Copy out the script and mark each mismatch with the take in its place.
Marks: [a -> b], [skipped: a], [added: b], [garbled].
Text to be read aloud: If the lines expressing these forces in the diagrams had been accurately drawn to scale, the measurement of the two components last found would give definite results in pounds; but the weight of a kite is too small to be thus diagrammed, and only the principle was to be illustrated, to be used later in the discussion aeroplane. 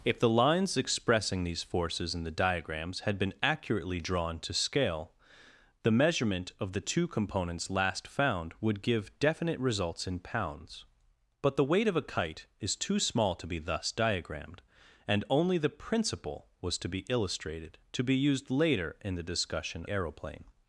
If the lines expressing these forces in the diagrams had been accurately drawn to scale, the measurement of the two components last found would give definite results in pounds; but the weight of a kite is too small to be thus diagrammed, and only the principle was to be illustrated, to be used later in the discussion aeroplane.